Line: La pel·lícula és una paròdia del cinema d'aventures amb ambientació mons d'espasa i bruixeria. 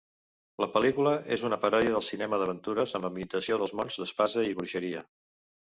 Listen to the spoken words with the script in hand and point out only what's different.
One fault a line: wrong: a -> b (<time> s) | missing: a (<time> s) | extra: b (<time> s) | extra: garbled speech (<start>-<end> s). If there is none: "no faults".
extra: dels (3.6 s)